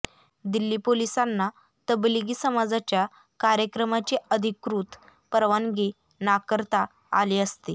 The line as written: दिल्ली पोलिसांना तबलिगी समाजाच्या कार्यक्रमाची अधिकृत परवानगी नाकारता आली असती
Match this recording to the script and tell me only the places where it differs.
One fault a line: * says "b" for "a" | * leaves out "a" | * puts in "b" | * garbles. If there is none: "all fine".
all fine